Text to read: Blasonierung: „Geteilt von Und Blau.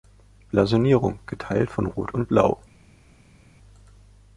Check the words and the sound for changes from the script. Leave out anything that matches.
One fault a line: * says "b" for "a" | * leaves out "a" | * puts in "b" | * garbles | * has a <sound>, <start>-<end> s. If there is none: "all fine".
* puts in "Rot"